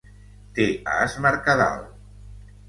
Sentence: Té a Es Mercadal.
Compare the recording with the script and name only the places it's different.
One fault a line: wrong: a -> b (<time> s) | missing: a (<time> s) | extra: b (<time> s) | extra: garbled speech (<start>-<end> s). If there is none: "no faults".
no faults